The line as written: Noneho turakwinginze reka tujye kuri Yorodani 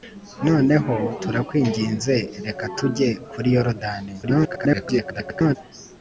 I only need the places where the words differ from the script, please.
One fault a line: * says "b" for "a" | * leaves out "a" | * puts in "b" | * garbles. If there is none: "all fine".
* garbles